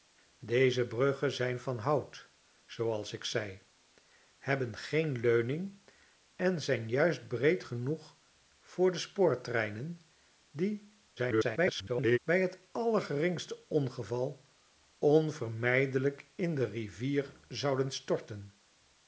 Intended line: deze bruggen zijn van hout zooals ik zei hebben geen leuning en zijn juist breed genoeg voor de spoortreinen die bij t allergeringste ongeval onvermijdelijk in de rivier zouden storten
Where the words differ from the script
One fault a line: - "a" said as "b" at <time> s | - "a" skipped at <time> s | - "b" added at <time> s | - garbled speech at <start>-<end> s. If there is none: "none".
- garbled speech at 11.2-12.2 s